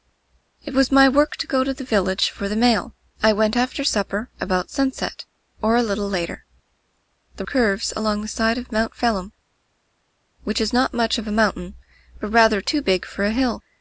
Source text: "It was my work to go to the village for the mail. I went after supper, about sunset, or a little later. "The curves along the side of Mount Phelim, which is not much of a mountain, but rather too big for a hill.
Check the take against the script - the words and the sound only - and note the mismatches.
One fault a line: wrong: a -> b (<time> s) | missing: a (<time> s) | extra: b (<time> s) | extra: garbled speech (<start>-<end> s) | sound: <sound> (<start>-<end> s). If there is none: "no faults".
no faults